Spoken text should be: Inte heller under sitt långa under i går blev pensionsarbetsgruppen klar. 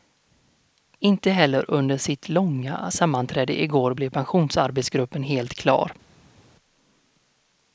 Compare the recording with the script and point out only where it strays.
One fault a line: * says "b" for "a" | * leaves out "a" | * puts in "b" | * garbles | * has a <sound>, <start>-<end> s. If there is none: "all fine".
* says "sammanträde" for "under"
* puts in "helt"